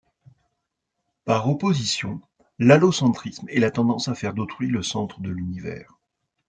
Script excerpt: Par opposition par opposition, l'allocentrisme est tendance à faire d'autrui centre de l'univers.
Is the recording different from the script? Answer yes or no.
yes